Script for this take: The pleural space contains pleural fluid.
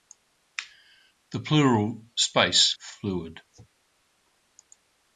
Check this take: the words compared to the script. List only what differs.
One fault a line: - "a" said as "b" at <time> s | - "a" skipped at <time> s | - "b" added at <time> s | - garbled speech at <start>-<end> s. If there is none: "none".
- "contains pleural" skipped at 2.7 s